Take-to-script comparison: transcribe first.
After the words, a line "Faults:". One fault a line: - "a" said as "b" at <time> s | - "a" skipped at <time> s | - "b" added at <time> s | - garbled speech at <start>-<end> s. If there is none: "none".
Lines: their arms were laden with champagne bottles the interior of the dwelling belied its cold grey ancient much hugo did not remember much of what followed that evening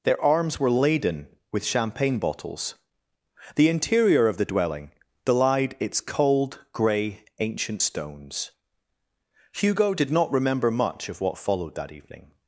their arms were laden with champagne bottles the interior of the dwelling belied its cold grey ancient stones hugo did not remember much of what followed that evening
Faults:
- "much" said as "stones" at 7.8 s